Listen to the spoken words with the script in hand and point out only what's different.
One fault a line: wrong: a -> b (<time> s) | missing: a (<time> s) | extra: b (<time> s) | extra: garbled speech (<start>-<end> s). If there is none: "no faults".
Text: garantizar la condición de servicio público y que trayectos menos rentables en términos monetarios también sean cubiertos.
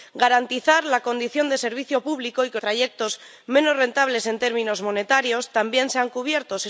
no faults